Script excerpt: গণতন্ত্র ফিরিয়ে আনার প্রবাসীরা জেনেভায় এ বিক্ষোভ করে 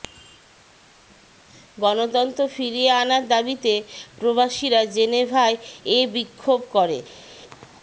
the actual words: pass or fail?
fail